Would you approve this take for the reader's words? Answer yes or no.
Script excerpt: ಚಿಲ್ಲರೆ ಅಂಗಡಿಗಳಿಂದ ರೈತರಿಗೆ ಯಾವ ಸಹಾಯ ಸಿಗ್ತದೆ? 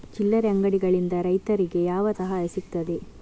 yes